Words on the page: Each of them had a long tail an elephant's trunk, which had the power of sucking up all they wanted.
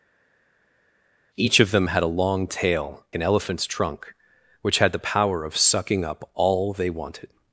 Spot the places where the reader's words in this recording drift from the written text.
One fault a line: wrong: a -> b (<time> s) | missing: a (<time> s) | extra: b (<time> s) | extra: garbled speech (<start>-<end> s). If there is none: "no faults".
no faults